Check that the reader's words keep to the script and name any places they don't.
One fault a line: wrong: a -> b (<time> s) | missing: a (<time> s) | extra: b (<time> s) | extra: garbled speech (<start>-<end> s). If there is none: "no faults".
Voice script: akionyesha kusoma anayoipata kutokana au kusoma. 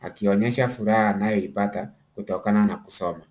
wrong: kusoma -> furaha (0.7 s)
wrong: au -> na (2.6 s)